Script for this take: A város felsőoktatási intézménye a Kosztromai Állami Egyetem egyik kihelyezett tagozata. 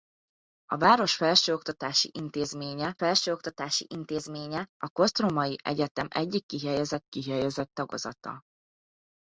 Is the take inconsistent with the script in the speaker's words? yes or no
yes